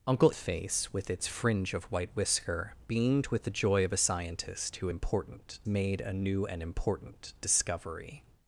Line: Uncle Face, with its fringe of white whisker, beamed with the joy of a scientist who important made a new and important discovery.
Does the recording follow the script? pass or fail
pass